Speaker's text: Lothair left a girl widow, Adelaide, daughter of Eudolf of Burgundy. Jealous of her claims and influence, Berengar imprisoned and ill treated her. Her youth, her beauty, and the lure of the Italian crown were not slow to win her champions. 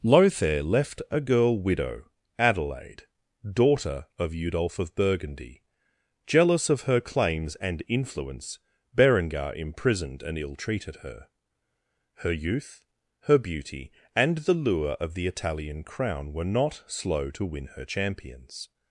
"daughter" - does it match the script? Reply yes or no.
yes